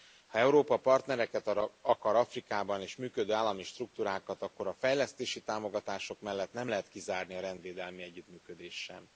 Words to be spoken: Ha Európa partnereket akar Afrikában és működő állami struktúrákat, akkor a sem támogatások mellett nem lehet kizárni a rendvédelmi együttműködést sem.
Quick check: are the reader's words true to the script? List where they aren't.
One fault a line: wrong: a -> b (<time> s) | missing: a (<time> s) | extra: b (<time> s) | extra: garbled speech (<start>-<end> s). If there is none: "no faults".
wrong: sem -> fejlesztési (4.7 s)